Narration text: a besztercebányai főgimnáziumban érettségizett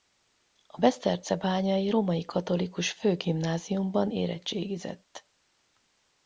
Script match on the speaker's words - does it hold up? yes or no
no